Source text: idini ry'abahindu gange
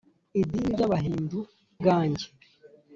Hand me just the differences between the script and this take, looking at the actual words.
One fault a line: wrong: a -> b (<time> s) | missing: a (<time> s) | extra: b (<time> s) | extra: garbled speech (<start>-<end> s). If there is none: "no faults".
no faults